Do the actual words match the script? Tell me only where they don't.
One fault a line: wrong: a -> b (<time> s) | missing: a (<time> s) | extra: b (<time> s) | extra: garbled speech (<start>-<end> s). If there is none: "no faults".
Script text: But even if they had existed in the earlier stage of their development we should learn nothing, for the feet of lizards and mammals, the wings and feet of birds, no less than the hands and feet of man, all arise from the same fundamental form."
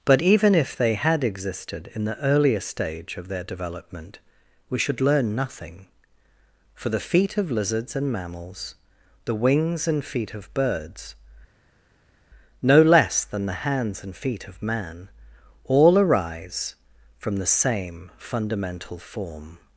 no faults